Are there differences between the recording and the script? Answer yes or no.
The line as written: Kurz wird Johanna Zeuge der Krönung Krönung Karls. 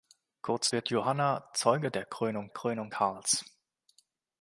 no